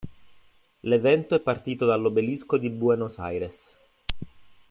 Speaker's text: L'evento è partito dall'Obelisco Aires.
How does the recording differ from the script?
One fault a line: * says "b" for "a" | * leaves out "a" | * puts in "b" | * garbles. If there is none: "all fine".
* puts in "di Buenos"